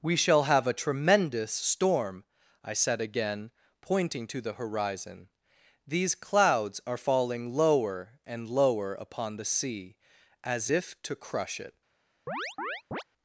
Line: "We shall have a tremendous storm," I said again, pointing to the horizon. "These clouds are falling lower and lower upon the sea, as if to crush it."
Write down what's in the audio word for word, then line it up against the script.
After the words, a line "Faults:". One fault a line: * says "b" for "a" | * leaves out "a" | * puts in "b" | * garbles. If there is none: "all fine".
"We shall have a tremendous storm," I said again, pointing to the horizon. "These clouds are falling lower and lower upon the sea, as if to crush it."
Faults:
all fine